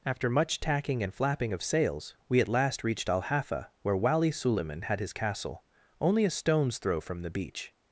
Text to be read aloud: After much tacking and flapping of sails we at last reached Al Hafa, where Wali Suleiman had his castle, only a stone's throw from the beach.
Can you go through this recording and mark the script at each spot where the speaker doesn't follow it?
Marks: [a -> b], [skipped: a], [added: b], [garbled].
After much tacking and flapping of sails we at last reached Al Hafa, where Wali Suleiman had his castle, only a stone's throw from the beach.